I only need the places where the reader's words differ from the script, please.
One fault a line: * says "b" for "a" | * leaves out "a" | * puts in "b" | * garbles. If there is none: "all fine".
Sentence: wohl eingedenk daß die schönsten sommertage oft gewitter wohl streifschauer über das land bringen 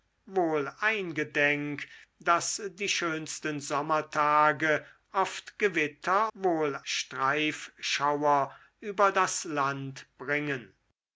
all fine